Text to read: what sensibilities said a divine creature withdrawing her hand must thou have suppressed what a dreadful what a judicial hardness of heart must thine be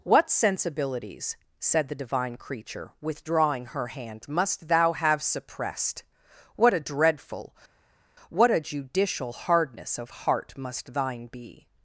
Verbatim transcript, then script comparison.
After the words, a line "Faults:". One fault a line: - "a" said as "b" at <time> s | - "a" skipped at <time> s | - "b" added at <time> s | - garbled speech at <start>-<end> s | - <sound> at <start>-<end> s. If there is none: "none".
what sensibilities said the divine creature withdrawing her hand must thou have suppressed what a dreadful what a judicial hardness of heart must thine be
Faults:
- "a" said as "the" at 1.9 s